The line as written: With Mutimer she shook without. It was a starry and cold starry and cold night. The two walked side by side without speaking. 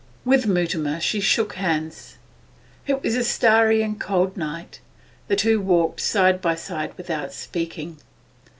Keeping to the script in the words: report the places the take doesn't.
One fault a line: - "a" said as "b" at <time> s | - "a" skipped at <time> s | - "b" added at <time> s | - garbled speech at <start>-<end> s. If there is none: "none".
- "without" said as "hands" at 1.5 s
- "starry and cold" skipped at 4.3 s